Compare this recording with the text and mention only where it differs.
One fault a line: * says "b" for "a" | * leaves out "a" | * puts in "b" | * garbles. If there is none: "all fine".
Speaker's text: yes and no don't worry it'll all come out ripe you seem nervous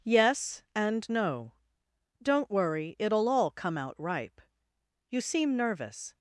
all fine